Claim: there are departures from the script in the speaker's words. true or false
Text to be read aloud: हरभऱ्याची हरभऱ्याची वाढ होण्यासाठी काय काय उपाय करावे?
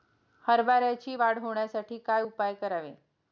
true